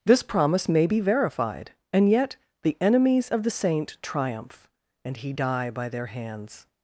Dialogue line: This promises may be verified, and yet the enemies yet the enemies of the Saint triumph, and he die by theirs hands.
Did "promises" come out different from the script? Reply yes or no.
yes